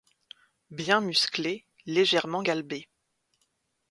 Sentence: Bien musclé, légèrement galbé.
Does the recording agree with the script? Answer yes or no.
yes